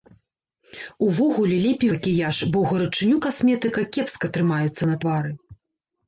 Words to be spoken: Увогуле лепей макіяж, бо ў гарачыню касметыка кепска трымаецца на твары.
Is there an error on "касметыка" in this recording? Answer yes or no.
no